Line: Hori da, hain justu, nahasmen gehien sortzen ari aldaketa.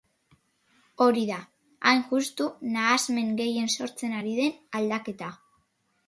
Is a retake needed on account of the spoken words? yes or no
yes